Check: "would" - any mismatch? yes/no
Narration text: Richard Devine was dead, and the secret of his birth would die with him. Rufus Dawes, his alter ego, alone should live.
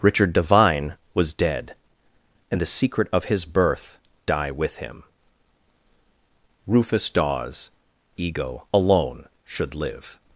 yes